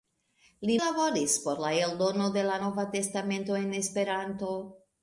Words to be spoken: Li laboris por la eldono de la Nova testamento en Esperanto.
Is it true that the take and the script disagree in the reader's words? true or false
false